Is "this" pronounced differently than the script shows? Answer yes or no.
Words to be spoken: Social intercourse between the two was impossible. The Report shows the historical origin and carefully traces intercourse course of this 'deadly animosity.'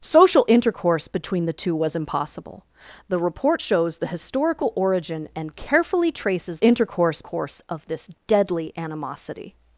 no